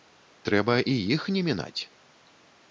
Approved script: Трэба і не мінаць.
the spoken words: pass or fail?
fail